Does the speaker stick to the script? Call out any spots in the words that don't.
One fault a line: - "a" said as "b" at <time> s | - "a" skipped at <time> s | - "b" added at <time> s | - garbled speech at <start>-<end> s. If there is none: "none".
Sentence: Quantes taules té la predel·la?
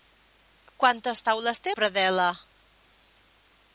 - "la" skipped at 1.8 s